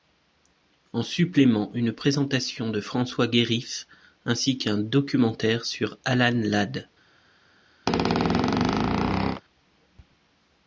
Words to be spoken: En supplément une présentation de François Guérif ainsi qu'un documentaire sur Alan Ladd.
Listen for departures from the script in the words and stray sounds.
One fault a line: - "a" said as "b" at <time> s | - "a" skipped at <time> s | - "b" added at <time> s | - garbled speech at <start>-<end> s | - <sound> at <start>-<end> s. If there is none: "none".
- squeak at 7.9-9.4 s